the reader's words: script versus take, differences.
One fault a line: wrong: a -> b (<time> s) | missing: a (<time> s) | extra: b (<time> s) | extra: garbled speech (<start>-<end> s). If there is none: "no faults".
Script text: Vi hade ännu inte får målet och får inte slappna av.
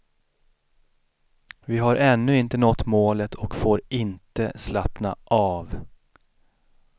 wrong: hade -> har (1.8 s)
wrong: får -> nått (2.6 s)